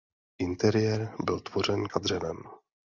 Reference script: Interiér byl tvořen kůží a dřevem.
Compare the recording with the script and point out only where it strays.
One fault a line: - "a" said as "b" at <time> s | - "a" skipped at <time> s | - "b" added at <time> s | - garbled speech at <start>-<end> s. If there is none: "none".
- "kůží" skipped at 1.8 s